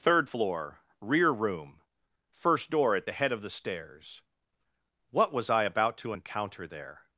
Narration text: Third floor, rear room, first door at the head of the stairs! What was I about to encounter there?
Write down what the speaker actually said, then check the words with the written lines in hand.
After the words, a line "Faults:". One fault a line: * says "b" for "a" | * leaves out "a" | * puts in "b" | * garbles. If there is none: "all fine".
Third floor, rear room, first door at the head of the stairs! What was I about to encounter there?
Faults:
all fine